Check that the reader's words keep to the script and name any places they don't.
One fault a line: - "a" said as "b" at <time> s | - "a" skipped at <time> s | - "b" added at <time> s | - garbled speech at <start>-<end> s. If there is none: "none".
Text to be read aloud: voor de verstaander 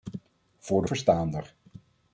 none